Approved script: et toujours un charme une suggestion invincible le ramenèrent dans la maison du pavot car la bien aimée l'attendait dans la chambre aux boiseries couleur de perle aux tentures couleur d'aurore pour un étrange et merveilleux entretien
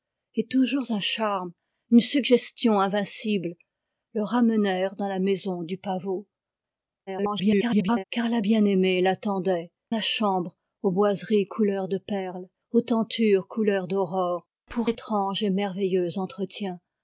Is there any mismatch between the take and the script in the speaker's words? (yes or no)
yes